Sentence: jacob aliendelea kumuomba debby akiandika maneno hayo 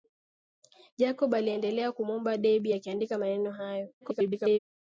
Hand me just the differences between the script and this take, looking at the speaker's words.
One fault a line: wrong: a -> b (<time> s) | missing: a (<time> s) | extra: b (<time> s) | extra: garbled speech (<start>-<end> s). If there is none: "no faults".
extra: garbled speech (4.0-4.6 s)